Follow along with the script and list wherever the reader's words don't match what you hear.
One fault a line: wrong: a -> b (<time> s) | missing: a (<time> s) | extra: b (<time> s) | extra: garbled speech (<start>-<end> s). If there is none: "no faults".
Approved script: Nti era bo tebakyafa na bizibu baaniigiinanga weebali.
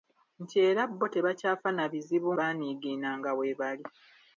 no faults